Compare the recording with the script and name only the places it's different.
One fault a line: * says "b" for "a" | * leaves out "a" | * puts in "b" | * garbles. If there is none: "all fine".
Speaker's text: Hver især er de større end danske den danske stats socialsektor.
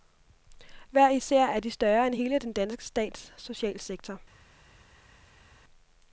* says "hele" for "danske"